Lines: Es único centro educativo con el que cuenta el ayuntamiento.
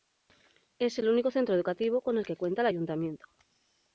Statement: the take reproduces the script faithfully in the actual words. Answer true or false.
false